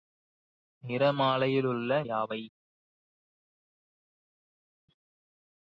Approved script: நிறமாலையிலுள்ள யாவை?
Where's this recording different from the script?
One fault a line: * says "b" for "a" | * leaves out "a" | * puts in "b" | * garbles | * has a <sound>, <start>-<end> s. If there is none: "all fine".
all fine